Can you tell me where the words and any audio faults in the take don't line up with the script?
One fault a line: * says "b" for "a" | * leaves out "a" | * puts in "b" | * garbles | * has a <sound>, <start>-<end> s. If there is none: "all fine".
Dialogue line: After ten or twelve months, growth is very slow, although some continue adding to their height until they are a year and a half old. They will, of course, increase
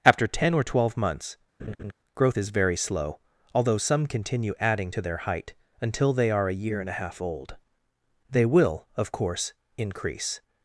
* has a laugh, 1.6-1.9 s